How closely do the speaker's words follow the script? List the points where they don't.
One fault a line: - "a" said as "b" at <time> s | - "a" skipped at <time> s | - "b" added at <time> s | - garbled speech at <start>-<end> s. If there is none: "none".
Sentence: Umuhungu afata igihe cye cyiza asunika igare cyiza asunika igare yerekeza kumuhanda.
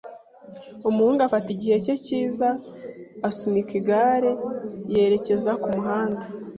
- "cyiza asunika igare" skipped at 4.3 s